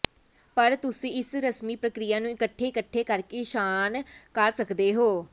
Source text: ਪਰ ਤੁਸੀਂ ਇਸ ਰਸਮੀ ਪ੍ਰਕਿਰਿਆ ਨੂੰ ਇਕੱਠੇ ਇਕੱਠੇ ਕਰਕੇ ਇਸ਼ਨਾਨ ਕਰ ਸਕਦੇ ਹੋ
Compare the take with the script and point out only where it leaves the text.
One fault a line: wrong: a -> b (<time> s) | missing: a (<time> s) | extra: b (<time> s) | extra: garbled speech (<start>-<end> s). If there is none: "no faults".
no faults